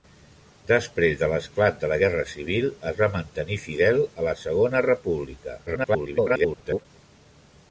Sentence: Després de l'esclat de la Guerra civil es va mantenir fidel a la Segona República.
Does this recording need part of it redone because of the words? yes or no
yes